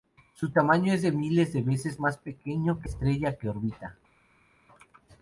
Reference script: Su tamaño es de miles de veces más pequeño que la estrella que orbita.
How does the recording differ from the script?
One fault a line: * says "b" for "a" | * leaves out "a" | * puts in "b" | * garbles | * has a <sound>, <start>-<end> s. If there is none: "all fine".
* leaves out "la"